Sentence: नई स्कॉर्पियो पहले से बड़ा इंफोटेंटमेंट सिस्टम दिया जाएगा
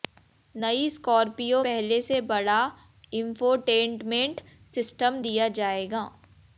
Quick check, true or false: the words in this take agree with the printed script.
true